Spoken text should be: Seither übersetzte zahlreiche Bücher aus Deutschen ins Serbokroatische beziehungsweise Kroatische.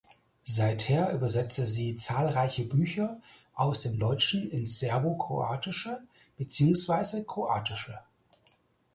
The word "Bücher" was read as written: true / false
true